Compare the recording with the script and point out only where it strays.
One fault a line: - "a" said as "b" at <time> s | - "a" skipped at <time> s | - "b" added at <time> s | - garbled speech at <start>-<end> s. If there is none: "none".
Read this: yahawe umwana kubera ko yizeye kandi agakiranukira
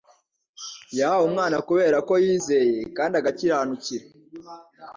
none